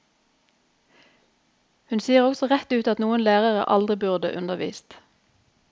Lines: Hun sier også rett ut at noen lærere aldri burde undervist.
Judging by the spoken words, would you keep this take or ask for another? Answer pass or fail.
pass